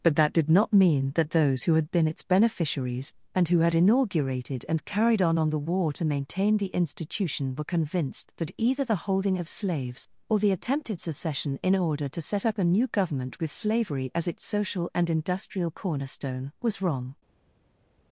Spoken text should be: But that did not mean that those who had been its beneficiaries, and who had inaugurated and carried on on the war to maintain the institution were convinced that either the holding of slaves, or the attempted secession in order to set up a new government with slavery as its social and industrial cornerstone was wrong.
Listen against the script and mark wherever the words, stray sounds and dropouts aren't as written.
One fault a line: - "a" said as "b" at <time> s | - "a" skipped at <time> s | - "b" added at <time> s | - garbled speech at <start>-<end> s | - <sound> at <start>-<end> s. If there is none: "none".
none